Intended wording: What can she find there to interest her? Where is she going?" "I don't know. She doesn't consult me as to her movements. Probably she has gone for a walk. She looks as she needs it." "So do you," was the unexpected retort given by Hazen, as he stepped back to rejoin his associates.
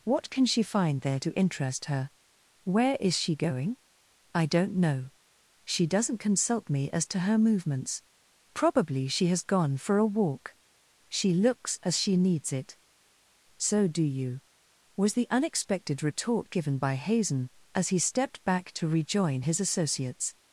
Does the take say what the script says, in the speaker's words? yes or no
yes